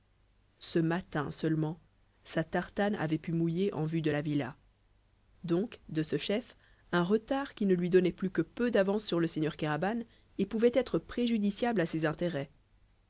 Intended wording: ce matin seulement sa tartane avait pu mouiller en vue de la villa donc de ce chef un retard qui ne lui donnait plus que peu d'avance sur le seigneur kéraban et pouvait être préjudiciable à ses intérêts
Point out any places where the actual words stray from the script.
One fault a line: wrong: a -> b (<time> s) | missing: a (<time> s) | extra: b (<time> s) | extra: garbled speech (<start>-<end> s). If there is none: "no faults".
no faults